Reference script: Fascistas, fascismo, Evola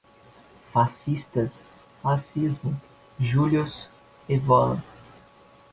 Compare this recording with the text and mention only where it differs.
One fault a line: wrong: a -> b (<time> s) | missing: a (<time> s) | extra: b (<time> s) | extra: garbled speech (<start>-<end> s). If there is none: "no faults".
extra: Julius (3.2 s)